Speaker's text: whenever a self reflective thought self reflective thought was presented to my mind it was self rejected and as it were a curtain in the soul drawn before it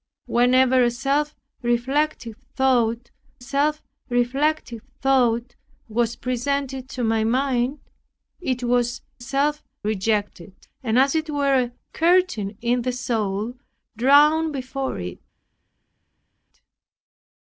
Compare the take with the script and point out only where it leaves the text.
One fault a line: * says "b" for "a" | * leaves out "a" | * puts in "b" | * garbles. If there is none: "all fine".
all fine